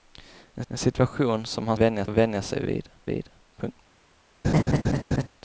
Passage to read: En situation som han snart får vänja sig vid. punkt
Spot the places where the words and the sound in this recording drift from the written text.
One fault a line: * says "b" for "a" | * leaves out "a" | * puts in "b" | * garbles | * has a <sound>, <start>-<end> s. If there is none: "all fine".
* puts in "en"
* says "vänja" for "snart"
* puts in "vid"
* has a laugh, 4.4-5.3 s